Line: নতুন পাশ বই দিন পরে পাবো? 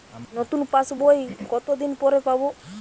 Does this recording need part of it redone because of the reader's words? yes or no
yes